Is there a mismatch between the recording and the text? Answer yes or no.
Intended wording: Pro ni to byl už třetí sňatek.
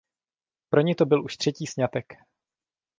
no